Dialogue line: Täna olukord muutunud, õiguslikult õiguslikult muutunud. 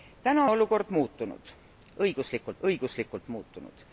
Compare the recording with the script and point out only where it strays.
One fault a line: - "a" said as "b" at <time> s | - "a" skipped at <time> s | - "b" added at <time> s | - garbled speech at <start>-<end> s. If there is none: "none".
none